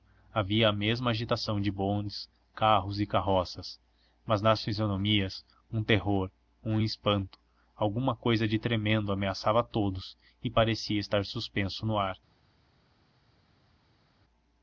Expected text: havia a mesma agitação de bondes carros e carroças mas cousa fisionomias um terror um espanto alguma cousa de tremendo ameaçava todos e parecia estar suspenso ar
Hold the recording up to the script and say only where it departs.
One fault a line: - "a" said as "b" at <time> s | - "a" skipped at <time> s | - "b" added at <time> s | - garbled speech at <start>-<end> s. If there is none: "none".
- "cousa" said as "nas" at 4.4 s
- "no" added at 11.9 s